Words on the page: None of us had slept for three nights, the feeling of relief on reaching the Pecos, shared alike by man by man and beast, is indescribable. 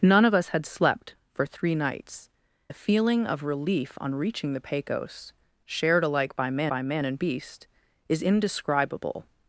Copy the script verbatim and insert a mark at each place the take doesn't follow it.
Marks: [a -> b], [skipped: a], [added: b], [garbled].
None of us had slept for three nights, the feeling of relief on reaching the Pecos, shared alike by man by man and beast, is indescribable.